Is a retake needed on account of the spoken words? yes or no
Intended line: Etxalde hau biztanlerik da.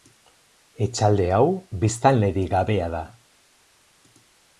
yes